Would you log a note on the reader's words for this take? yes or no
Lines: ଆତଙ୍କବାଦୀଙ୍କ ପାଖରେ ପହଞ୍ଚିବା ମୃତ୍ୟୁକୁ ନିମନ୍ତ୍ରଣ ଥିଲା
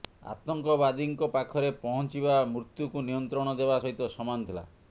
yes